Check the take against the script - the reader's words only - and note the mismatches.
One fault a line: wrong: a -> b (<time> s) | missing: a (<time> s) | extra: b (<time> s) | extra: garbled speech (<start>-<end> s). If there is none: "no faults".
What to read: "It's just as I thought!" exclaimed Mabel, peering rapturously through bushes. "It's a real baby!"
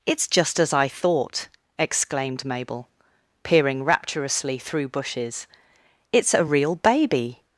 no faults